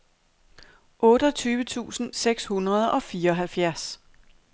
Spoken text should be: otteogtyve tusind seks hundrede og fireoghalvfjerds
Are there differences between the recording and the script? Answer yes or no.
no